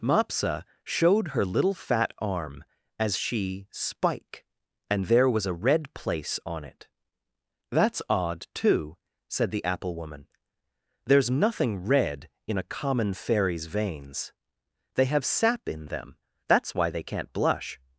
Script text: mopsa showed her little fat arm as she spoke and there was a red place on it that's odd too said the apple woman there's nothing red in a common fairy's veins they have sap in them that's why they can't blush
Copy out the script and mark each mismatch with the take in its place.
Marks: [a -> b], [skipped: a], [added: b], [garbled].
mopsa showed her little fat arm as she [spoke -> spike] and there was a red place on it that's odd too said the apple woman there's nothing red in a common fairy's veins they have sap in them that's why they can't blush